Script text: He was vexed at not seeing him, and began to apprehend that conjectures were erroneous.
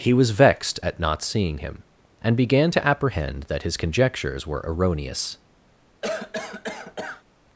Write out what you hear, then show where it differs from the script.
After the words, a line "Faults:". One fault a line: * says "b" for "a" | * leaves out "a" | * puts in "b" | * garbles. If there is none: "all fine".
He was vexed at not seeing him, and began to apprehend that his conjectures were erroneous.
Faults:
* puts in "his"